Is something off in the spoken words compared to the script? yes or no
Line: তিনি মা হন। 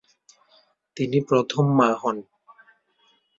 yes